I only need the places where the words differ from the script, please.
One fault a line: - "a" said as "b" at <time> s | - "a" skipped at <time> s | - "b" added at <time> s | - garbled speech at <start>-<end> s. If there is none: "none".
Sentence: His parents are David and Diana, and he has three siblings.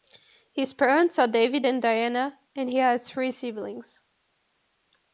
none